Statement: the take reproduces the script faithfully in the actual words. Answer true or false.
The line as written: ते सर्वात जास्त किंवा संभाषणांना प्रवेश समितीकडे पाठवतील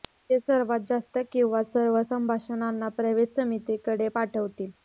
false